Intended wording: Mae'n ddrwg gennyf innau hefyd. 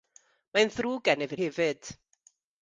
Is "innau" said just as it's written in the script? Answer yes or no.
no